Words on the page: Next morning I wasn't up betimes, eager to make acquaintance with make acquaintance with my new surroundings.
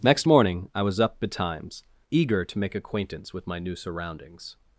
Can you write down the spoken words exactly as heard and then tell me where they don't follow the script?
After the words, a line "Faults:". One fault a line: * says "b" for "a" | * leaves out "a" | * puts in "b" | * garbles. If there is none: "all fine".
Next morning I was up betimes, eager to make acquaintance with my new surroundings.
Faults:
* says "was" for "wasn't"
* leaves out "make acquaintance with"